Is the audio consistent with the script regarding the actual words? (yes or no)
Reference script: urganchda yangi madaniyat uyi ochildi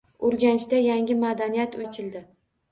no